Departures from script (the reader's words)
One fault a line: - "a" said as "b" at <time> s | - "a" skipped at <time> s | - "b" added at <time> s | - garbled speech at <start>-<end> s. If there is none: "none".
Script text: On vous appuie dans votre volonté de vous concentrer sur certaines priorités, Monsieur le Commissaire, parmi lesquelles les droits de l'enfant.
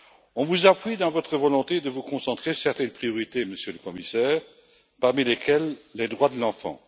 - "sur" skipped at 2.5 s